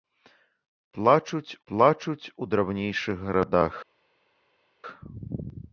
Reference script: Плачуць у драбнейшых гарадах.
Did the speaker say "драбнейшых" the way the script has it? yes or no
yes